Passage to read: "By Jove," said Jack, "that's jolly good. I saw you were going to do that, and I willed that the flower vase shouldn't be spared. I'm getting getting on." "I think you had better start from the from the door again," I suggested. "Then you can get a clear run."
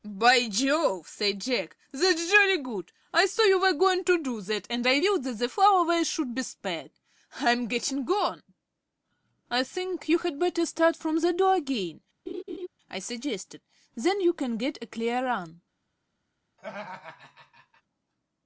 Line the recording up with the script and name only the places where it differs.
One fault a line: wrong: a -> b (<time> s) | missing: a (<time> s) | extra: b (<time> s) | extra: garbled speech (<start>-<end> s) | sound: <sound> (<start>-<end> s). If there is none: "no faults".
wrong: shouldn't -> should (6.1 s)
missing: getting (8.1 s)
missing: from the (11.3 s)
sound: laugh (12.3-12.7 s)
sound: laugh (16.6-17.8 s)